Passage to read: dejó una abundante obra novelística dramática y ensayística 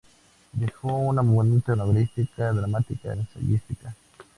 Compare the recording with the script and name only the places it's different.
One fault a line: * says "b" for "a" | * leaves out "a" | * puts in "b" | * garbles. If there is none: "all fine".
* leaves out "obra"
* leaves out "y"